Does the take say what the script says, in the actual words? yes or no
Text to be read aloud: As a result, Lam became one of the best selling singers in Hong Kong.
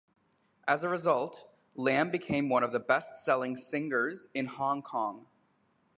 yes